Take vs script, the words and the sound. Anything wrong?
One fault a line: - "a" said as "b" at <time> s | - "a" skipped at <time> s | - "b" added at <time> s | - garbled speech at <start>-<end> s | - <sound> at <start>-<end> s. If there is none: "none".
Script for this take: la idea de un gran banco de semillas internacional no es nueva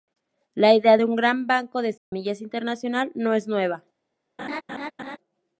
- dropout at 2.0-2.1 s
- laugh at 4.4-5.2 s